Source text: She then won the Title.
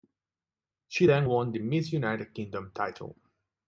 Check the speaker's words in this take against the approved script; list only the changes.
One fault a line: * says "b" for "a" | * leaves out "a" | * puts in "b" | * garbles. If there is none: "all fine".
* puts in "Miss United Kingdom"